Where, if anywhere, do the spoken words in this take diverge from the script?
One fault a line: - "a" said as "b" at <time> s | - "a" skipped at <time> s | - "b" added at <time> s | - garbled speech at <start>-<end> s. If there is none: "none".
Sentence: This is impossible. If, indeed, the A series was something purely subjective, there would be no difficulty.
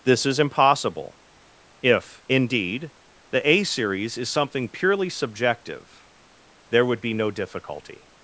- "was" said as "is" at 4.2 s